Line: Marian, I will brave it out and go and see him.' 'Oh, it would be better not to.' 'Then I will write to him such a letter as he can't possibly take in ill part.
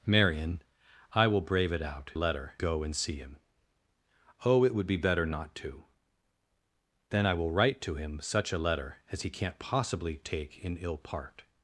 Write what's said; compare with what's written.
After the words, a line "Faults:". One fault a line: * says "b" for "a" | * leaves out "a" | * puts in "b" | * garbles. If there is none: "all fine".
Marian, I will brave it out letter go and see him.' 'Oh, it would be better not to.' 'Then I will write to him such a letter as he can't possibly take in ill part.
Faults:
* says "letter" for "and"